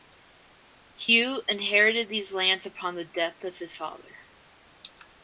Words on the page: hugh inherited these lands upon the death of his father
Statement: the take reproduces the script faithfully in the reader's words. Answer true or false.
true